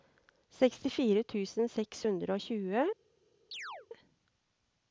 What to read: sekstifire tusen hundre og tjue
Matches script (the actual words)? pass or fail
fail